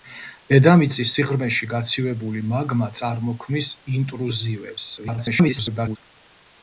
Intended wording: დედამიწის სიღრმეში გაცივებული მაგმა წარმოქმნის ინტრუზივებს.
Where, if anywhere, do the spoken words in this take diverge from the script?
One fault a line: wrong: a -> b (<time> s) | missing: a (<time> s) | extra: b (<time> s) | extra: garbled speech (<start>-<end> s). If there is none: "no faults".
extra: garbled speech (5.0-6.0 s)